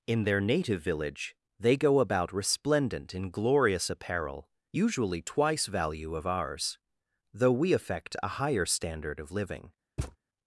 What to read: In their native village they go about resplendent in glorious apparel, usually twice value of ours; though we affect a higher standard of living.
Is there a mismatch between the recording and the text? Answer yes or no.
no